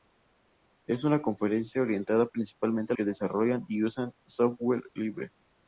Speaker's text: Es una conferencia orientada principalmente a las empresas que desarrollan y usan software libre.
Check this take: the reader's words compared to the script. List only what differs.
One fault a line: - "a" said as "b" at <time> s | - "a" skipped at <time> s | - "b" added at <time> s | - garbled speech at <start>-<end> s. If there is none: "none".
- "las empresas" skipped at 3.0 s